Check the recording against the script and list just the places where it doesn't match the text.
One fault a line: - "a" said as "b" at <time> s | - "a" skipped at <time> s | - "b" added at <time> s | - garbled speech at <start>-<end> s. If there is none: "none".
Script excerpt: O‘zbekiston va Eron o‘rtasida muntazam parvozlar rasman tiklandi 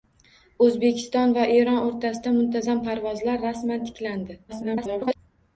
- garbled speech at 4.5-5.2 s